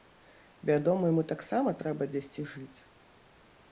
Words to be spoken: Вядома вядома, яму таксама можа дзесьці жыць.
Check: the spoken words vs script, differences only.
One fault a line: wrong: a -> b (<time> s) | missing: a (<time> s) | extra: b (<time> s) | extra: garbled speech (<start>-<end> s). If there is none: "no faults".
missing: вядома (1.0 s)
wrong: можа -> трэба (1.8 s)